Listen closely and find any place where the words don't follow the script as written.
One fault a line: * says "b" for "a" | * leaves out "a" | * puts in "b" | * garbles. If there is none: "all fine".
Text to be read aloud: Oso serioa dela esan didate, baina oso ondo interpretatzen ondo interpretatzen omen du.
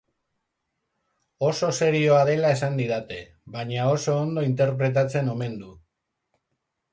* leaves out "ondo interpretatzen"